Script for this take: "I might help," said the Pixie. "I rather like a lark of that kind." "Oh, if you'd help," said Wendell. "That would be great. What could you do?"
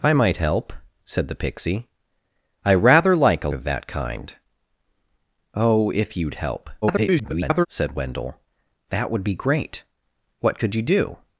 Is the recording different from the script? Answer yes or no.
yes